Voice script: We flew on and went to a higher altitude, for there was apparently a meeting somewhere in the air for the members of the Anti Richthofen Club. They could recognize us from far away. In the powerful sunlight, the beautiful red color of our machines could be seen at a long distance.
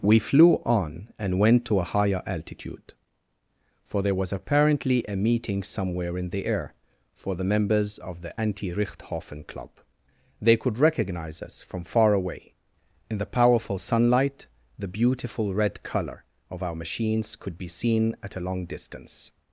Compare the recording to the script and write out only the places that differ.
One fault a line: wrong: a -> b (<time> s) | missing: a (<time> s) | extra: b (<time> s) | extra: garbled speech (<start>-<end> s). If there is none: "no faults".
no faults